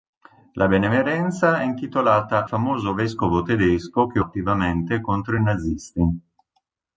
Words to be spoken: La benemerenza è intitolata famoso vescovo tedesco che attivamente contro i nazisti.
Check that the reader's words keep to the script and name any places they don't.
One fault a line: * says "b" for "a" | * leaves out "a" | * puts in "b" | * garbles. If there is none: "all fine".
all fine